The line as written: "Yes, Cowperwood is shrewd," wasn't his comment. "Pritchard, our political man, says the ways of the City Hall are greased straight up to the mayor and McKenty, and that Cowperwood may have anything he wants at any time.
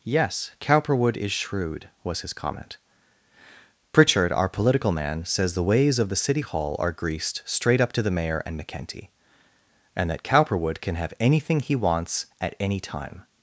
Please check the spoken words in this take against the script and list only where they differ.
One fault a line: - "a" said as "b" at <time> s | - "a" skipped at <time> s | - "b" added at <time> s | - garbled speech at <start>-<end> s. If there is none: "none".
- "wasn't" said as "was" at 2.0 s
- "may" said as "can" at 10.8 s